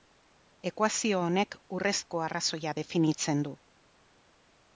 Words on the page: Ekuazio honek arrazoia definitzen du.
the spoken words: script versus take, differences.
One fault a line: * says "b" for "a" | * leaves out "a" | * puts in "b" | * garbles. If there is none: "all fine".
* puts in "urrezko"